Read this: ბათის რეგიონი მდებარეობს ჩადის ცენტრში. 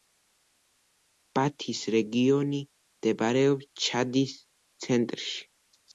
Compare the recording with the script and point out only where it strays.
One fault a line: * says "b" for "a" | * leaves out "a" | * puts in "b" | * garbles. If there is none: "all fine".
all fine